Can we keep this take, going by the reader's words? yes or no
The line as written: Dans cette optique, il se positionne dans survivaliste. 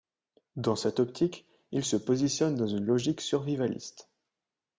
no